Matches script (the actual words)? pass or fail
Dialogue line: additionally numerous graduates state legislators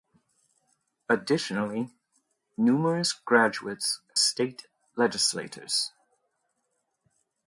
pass